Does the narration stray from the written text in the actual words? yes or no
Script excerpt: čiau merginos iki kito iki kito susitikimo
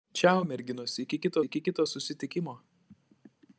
no